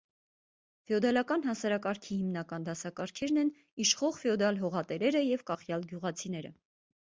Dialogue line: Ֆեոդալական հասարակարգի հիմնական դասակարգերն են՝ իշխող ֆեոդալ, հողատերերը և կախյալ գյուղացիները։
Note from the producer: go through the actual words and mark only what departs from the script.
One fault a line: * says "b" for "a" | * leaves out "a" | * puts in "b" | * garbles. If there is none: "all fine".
all fine